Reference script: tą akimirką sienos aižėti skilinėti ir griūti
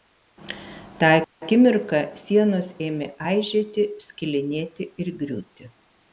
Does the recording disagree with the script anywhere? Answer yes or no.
yes